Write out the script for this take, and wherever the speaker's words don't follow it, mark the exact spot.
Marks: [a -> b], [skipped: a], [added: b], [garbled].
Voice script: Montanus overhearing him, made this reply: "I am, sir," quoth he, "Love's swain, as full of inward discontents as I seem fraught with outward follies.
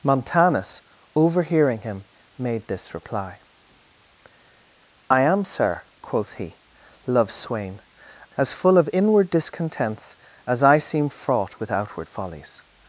Montanus overhearing him, made this reply: "I am, sir," quoth he, "Love's swain, as full of inward discontents as I seem fraught with outward follies.